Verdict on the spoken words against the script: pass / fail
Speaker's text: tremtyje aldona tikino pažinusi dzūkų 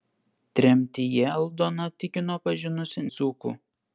pass